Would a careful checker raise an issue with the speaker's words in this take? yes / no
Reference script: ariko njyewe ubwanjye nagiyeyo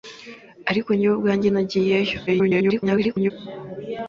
yes